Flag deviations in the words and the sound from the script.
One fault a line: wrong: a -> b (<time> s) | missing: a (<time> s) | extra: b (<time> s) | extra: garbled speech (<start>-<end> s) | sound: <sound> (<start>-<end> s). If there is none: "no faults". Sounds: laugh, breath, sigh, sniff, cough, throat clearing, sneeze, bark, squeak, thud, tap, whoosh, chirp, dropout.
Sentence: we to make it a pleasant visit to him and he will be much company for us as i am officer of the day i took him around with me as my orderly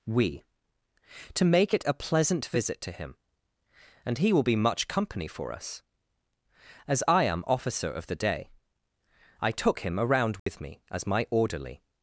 sound: dropout (10.4-10.5 s)